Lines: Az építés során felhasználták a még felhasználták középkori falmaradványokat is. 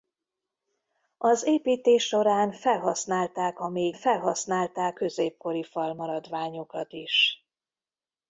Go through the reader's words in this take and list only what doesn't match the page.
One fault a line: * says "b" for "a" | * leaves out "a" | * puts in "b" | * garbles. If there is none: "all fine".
all fine